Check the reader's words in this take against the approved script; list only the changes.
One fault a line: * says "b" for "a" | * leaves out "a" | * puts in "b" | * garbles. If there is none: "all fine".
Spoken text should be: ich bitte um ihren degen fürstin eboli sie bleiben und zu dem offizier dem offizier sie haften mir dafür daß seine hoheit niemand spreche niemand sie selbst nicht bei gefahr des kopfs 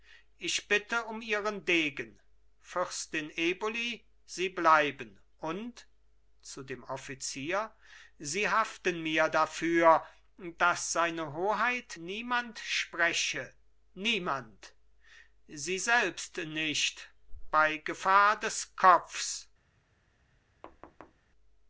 * leaves out "dem offizier"